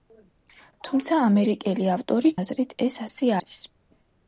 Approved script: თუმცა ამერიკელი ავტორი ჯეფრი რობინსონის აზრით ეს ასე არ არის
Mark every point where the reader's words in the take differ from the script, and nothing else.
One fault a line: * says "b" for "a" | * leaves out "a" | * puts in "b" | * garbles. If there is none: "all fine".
* leaves out "ჯეფრი რობინსონის"
* leaves out "არ"